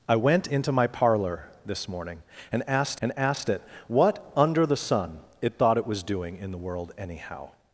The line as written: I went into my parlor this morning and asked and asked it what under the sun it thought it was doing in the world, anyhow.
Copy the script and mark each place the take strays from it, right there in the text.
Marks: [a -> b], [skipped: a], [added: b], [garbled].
I went into my parlor this morning and asked and asked it what under the sun it thought it was doing in the world, anyhow.